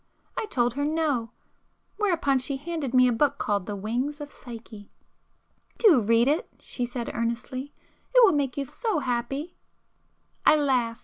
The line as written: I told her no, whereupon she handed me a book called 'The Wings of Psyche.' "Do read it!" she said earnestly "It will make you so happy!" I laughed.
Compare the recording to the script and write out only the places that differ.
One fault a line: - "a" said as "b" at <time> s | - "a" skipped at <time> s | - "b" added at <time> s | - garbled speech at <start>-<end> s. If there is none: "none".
none